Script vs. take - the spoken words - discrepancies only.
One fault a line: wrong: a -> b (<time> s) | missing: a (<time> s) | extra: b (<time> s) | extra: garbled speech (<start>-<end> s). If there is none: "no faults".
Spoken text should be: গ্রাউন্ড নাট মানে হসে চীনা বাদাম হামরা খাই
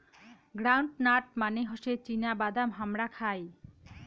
no faults